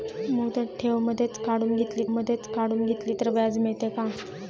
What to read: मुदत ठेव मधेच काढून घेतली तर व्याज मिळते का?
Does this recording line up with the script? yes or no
no